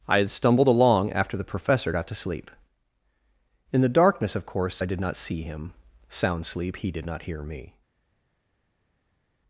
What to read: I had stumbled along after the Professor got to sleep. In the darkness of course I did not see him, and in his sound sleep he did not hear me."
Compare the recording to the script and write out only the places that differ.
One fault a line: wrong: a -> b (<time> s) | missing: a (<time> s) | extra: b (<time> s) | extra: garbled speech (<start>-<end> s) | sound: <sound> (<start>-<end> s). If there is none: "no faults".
missing: and in his (5.7 s)